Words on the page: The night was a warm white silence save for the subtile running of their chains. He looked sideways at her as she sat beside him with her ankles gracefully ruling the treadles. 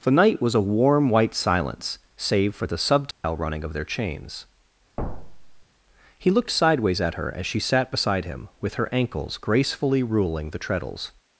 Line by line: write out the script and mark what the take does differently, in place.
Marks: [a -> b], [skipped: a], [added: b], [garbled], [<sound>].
The night was a warm white silence save for the subtile [dropout] running of their chains. [thud] He looked sideways at her as she sat beside him with her ankles gracefully ruling the treadles.